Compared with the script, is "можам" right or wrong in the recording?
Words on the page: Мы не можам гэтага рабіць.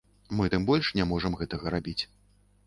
right